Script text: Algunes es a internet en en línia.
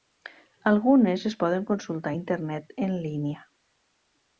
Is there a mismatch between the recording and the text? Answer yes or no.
yes